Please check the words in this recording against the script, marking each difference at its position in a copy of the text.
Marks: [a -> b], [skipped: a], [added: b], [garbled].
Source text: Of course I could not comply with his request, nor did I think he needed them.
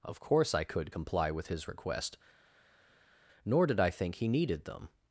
Of course I could [skipped: not] comply with his request, nor did I think he needed them.